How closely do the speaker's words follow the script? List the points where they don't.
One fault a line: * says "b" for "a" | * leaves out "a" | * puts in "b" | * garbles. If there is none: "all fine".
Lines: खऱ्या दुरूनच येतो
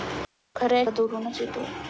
all fine